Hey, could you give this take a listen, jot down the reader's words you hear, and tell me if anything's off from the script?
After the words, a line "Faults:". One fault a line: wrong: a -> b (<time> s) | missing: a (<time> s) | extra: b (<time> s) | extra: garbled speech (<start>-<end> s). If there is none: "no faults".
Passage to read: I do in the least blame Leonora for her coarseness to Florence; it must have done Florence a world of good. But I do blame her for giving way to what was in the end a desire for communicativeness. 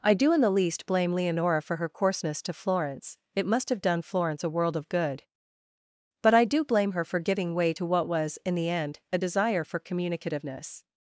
I do in the least blame Leonora for her coarseness to Florence; it must have done Florence a world of good. But I do blame her for giving way to what was in the end a desire for communicativeness.
Faults:
no faults